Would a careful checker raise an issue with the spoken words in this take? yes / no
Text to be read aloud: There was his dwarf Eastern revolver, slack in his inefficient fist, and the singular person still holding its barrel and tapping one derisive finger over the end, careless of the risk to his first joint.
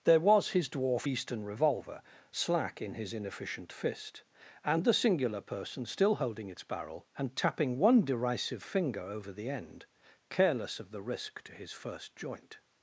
no